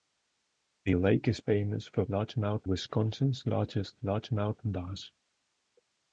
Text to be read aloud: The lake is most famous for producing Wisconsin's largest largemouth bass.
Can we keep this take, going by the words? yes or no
no